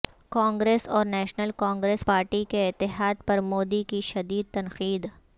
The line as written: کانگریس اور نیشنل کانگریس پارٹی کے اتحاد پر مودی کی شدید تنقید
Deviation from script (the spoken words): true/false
false